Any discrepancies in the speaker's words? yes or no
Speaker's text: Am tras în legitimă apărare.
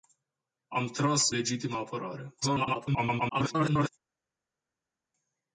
yes